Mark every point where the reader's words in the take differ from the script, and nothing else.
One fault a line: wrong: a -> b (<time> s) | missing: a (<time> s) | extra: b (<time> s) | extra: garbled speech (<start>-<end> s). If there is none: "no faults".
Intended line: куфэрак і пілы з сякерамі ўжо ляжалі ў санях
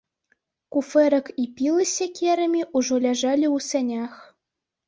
no faults